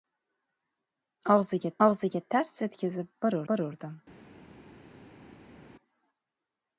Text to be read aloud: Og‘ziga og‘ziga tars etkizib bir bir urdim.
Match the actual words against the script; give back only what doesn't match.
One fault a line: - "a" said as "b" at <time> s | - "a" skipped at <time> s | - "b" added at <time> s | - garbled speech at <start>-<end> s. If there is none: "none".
none